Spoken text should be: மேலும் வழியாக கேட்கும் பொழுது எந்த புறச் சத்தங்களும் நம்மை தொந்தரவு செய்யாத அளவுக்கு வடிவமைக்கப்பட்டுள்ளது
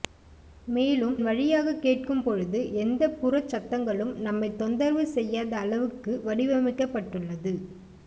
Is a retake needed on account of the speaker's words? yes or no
no